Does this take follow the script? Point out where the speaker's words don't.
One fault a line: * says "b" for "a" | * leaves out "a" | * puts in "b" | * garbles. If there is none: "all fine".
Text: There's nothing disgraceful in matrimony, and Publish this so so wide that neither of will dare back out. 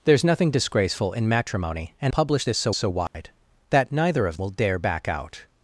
all fine